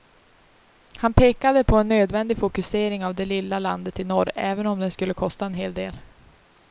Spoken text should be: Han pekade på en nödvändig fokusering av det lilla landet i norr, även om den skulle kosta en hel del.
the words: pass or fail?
pass